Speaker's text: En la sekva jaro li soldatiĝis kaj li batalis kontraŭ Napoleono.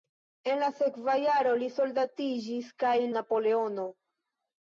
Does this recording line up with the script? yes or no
no